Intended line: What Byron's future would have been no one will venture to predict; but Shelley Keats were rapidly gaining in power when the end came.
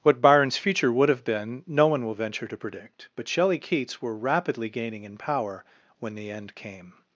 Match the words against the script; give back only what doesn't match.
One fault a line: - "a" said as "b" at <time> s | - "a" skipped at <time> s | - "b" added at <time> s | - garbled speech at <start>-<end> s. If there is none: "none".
none